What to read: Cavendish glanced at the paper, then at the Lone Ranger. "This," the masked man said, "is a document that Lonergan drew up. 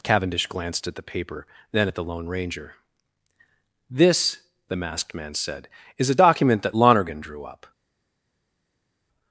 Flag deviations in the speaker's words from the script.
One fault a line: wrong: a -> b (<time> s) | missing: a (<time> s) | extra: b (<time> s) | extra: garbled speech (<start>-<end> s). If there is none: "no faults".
no faults